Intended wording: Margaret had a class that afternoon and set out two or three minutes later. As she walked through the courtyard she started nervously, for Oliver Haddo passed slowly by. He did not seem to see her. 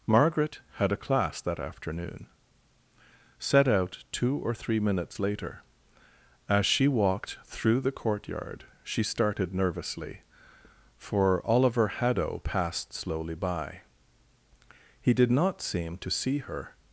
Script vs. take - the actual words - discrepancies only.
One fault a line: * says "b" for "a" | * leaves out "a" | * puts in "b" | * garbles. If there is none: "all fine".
* leaves out "and"